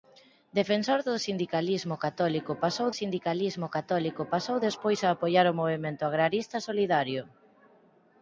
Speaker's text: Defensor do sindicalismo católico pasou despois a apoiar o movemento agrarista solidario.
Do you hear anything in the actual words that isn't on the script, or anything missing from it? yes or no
yes